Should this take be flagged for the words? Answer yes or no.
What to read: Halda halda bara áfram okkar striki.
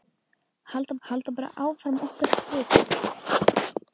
no